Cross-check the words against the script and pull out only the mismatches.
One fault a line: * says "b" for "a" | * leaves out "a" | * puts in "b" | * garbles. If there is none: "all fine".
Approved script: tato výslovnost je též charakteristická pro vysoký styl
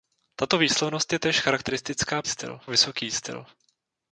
* says "styl" for "pro"